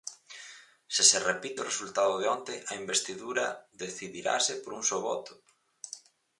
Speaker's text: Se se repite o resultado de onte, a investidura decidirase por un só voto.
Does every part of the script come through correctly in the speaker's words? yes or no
yes